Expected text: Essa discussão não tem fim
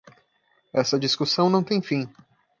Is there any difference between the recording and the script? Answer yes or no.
no